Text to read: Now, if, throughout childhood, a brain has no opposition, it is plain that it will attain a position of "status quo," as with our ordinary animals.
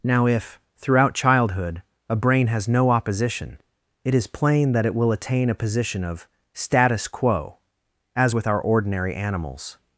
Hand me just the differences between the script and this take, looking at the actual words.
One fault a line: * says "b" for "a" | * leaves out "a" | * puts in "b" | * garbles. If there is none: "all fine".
all fine